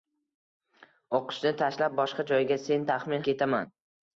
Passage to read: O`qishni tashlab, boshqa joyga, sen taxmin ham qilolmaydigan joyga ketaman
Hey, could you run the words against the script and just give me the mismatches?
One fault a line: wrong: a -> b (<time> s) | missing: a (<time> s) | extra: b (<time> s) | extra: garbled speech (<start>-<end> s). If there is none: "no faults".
missing: ham qilolmaydigan joyga (3.2 s)